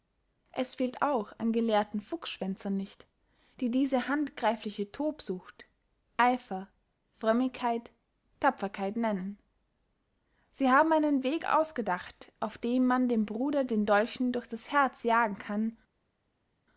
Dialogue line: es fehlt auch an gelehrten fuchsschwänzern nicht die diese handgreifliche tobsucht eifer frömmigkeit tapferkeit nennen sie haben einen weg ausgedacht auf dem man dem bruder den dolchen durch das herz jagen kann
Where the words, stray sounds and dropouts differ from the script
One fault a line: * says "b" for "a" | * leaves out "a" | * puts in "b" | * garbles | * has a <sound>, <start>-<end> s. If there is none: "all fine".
all fine